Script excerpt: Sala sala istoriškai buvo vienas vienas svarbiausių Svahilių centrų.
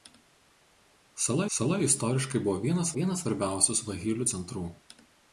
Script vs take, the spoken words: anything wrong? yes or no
no